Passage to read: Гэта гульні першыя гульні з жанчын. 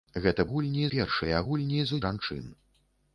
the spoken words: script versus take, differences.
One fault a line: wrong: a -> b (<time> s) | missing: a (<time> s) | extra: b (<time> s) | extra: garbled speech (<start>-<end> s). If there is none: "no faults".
no faults